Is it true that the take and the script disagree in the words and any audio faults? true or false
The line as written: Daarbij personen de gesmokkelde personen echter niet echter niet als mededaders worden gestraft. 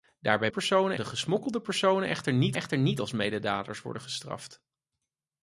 false